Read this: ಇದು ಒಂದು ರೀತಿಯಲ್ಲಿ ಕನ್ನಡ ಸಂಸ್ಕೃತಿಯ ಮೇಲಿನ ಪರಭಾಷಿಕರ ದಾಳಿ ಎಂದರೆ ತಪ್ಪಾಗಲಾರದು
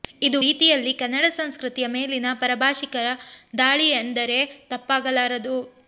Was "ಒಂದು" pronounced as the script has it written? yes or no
no